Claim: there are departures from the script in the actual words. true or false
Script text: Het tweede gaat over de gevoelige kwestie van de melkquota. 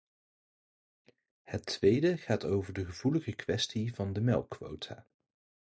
false